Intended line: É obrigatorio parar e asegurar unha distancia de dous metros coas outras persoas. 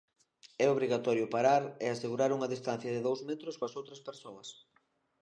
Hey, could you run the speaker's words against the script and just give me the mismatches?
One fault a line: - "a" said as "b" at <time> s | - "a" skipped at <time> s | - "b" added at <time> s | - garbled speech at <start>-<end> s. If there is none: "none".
none